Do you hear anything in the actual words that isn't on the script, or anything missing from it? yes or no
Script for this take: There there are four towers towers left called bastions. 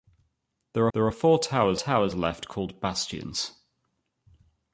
no